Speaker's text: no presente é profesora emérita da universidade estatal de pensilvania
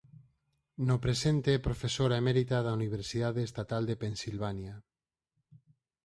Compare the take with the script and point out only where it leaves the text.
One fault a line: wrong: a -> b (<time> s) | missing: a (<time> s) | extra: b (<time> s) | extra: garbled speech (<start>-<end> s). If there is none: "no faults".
no faults